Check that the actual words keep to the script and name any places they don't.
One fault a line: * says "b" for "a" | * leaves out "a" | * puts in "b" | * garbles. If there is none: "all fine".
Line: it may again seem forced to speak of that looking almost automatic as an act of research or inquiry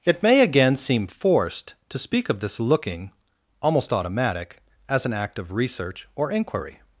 * says "this" for "that"